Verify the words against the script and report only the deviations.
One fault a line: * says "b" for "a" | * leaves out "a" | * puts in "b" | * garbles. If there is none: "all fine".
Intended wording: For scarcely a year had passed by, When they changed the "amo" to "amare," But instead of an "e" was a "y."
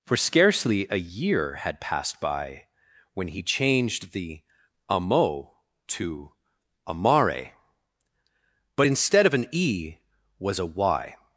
* says "he" for "they"